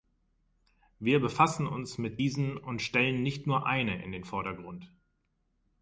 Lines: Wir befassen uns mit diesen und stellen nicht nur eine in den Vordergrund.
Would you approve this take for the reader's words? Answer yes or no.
yes